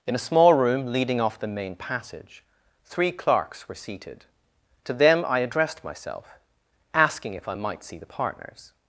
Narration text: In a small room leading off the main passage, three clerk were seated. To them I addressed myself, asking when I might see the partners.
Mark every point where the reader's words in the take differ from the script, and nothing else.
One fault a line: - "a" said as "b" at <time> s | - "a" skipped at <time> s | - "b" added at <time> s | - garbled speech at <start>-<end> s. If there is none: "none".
- "clerk" said as "clerks" at 3.1 s
- "when" said as "if" at 7.3 s